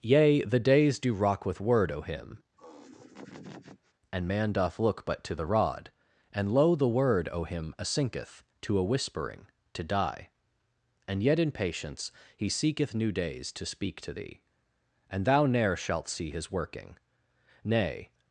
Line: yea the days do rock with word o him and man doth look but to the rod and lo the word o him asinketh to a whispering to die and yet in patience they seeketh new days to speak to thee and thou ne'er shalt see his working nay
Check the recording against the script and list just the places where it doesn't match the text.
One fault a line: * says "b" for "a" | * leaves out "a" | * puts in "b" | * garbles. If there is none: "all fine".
* says "he" for "they"